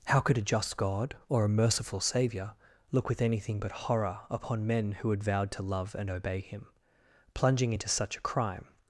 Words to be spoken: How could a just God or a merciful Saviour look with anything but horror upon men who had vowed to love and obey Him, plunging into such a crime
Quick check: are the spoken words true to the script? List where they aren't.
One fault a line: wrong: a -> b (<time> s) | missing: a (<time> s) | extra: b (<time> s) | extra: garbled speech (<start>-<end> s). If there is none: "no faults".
no faults